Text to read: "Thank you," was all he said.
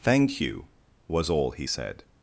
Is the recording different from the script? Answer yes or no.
no